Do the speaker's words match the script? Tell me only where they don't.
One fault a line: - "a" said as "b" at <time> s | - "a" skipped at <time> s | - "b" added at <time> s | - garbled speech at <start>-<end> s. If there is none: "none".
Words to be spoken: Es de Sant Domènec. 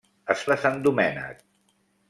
none